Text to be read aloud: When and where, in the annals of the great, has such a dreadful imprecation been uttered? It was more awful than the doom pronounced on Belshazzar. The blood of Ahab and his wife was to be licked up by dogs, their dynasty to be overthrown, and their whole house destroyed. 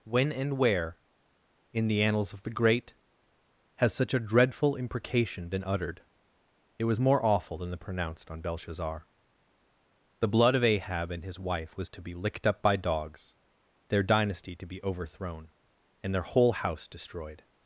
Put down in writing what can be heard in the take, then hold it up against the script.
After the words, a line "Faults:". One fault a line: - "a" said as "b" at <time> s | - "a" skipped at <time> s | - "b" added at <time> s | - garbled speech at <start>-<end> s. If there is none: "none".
When and where, in the annals of the great, has such a dreadful imprecation been uttered? It was more awful than the pronounced on Belshazzar. The blood of Ahab and his wife was to be licked up by dogs, their dynasty to be overthrown, and their whole house destroyed.
Faults:
- "doom" skipped at 7.8 s